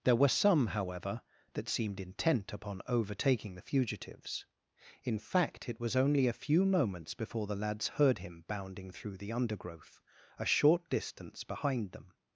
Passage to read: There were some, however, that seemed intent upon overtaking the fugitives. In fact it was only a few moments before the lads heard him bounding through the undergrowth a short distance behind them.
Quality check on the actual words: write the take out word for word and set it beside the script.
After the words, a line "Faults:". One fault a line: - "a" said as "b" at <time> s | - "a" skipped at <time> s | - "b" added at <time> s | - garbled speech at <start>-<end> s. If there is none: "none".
There were some, however, that seemed intent upon overtaking the fugitives. In fact it was only a few moments before the lads heard him bounding through the undergrowth a short distance behind them.
Faults:
none